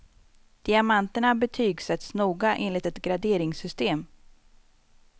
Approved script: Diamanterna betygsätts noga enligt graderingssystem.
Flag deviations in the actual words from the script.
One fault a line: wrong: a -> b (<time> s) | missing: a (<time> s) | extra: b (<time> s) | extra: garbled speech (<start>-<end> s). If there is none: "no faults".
extra: ett (2.9 s)